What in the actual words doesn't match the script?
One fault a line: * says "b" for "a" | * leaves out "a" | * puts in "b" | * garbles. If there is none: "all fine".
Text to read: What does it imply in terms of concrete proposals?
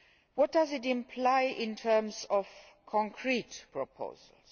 all fine